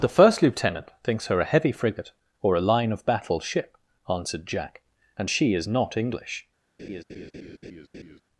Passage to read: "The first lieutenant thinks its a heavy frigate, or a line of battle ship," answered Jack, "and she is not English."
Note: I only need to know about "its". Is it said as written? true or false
false